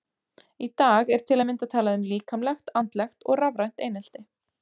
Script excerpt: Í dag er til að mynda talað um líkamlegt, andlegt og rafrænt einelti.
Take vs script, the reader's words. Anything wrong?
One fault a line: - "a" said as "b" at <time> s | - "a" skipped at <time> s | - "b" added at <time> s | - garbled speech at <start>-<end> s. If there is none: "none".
none